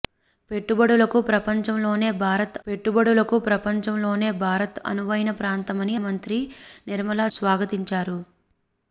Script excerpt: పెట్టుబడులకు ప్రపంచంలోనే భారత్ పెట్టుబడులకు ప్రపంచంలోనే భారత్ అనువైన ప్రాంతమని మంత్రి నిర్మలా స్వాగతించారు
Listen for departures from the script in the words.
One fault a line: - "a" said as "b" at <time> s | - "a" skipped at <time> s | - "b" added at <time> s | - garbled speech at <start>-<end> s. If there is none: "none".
none